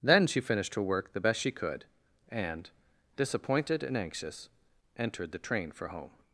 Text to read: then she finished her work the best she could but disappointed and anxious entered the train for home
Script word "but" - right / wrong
wrong